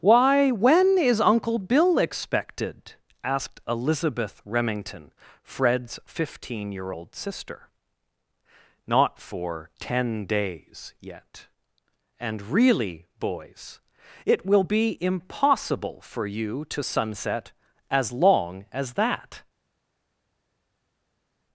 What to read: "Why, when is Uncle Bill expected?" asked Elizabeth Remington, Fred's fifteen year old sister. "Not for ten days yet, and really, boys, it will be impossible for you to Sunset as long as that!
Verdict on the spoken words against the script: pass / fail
pass